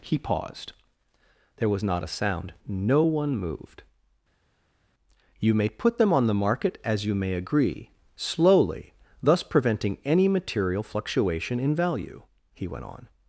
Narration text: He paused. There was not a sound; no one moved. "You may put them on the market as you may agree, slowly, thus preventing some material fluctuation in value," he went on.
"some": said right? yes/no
no